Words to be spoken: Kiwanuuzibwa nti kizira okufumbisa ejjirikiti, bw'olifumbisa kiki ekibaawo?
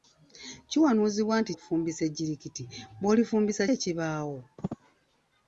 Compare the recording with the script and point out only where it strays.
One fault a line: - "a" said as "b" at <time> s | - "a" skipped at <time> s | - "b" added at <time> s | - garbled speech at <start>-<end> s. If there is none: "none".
- "kizira" skipped at 1.5 s
- "kiki" skipped at 3.6 s